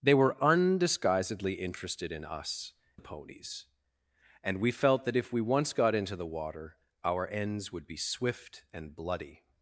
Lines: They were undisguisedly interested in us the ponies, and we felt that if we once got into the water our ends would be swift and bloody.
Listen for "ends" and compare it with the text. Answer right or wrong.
right